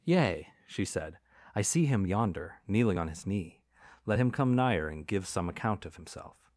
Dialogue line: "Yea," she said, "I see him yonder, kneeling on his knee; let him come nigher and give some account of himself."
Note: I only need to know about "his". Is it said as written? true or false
true